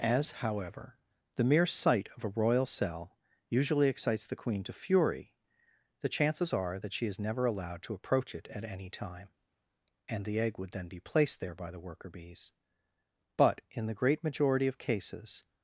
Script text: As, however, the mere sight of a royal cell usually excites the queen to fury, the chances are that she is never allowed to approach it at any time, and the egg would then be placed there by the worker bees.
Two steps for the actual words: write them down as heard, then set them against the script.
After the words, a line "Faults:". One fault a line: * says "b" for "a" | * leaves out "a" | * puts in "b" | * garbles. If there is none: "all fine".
As, however, the mere sight of a royal cell usually excites the queen to fury, the chances are that she is never allowed to approach it at any time, and the egg would then be placed there by the worker bees. But, in the great majority of cases
Faults:
* puts in "But in the great majority of cases"